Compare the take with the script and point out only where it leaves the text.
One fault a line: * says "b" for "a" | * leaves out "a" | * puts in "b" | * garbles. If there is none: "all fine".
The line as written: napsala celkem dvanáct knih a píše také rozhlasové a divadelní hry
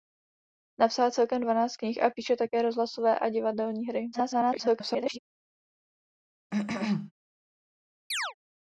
* garbles